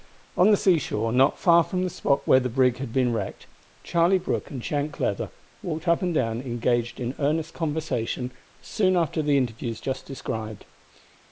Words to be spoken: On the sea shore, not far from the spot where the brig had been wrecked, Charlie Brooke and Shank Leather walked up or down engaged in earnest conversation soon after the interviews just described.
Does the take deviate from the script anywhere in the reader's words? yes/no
yes